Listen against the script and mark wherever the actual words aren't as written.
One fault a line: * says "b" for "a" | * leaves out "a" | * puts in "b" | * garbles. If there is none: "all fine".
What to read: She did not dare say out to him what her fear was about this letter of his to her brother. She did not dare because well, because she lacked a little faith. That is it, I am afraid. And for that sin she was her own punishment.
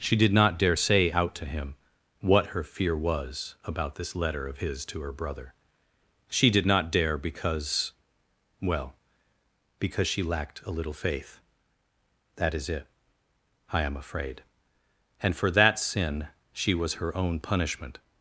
all fine